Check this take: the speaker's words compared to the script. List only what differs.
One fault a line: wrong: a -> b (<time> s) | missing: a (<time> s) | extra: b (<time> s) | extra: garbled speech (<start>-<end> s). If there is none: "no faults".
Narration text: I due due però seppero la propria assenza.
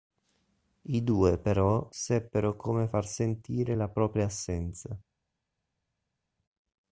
missing: due (1.4 s)
extra: come far sentire (2.5 s)